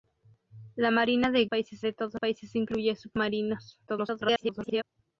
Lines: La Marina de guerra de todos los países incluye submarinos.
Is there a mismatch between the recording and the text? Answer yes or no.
yes